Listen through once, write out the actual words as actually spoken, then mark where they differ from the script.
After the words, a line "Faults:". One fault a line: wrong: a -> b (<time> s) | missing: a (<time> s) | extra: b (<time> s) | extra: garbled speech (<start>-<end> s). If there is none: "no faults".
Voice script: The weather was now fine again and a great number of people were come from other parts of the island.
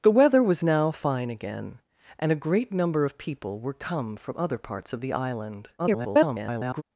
The weather was now fine again and a great number of people were come from other parts of the island. [garbled]
Faults:
extra: garbled speech (5.8-6.8 s)